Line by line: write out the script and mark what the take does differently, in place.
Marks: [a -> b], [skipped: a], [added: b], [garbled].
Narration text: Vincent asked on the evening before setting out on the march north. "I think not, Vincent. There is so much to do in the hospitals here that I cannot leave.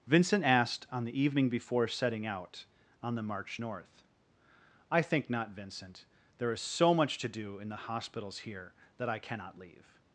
Vincent asked on the evening before setting out on the march north. "I think not, Vincent. There is so much to do in the hospitals here that I cannot leave.